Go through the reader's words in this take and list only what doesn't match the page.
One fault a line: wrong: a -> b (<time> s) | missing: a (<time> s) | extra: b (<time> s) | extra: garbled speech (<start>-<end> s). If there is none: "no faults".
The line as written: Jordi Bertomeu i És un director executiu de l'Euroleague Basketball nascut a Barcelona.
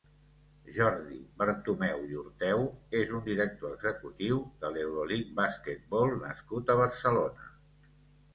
extra: Orteu (2.2 s)